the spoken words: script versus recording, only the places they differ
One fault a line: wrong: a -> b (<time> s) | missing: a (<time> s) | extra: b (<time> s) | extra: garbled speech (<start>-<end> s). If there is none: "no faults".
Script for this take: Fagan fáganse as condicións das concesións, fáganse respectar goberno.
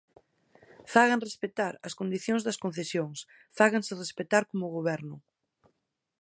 wrong: fáganse -> respectar (1.3 s)
extra: como (4.5 s)